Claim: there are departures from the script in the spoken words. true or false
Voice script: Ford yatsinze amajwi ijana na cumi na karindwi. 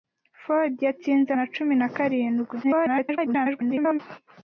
true